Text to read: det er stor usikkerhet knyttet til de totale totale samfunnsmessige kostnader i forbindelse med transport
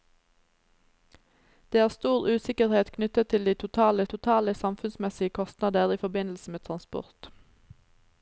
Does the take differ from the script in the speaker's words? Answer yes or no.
no